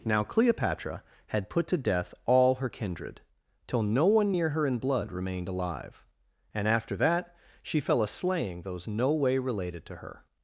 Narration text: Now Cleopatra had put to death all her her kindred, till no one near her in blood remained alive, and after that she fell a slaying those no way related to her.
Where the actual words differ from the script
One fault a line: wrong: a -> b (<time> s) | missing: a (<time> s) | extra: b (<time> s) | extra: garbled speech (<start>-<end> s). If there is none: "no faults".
missing: her (2.7 s)